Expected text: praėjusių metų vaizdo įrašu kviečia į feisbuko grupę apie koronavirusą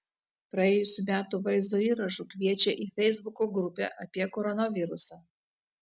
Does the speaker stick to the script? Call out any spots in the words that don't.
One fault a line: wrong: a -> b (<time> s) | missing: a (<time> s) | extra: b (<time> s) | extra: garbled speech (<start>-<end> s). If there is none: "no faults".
no faults